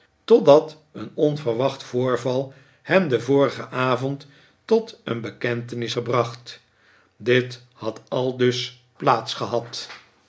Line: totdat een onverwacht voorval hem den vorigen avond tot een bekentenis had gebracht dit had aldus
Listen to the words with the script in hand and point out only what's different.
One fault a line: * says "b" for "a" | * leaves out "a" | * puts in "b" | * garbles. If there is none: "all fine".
* leaves out "had"